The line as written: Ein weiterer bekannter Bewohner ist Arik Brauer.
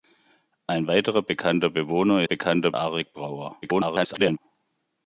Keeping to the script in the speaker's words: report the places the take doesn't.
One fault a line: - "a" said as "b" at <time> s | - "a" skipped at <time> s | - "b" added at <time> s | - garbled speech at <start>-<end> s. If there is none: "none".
- "ist" said as "bekannter" at 2.2 s
- garbled speech at 3.6-4.4 s